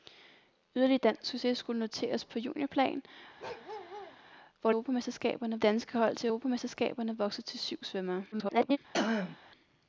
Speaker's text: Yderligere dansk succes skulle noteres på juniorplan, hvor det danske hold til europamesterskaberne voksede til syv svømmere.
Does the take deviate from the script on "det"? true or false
true